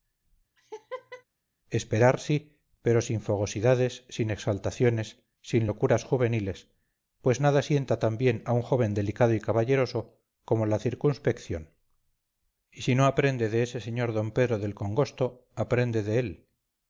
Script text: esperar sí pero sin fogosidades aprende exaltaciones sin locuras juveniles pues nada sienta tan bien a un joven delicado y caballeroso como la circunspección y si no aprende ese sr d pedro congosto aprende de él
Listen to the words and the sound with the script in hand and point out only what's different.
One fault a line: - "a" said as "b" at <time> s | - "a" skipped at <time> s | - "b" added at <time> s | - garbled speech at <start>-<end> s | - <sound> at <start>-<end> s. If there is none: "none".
- laugh at 0.6-1.2 s
- "aprende" said as "sin" at 4.1 s
- "de" added at 13.5 s
- "del" added at 14.6 s